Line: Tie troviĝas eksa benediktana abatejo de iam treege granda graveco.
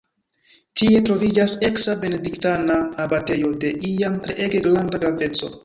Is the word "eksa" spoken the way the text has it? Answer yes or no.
yes